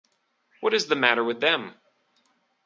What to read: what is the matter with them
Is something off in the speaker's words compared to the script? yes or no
no